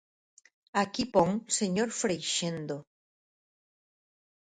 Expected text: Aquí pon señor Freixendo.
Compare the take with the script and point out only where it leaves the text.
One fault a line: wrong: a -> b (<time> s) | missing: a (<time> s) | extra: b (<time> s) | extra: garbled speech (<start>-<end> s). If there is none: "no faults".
no faults